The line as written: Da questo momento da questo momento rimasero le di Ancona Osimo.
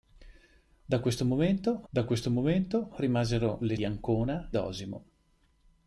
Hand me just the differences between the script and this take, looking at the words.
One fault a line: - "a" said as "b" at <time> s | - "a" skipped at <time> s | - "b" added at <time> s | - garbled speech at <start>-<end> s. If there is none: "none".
none